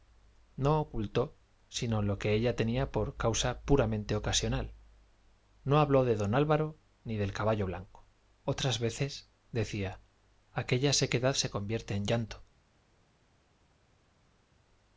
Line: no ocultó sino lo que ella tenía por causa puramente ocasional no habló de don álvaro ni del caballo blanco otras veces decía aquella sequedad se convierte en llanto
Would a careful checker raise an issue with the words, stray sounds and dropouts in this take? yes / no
no